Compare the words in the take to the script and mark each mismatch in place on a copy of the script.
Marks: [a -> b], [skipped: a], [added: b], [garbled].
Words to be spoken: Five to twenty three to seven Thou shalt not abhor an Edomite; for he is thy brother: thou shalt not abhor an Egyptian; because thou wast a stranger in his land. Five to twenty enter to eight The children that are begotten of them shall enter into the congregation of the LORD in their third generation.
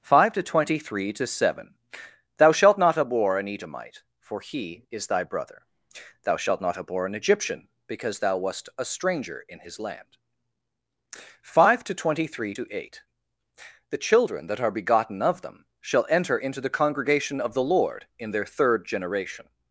Five to twenty three to seven Thou shalt not abhor an Edomite; for he is thy brother: thou shalt not abhor an Egyptian; because thou wast a stranger in his land. Five to twenty [enter -> three] to eight The children that are begotten of them shall enter into the congregation of the LORD in their third generation.